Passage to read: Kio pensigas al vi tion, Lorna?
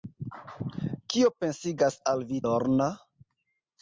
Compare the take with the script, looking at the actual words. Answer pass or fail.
fail